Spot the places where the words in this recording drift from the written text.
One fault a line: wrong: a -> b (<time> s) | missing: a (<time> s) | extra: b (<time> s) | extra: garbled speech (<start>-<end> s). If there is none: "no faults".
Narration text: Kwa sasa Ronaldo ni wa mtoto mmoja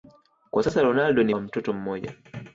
no faults